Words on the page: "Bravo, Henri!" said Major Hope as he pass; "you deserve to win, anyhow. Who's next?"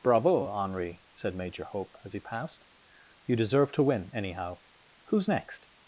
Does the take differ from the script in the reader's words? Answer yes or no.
yes